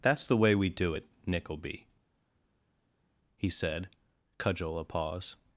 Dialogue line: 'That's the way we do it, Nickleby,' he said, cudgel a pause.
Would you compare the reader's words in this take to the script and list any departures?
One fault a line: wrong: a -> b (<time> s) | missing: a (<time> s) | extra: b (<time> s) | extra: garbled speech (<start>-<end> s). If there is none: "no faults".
no faults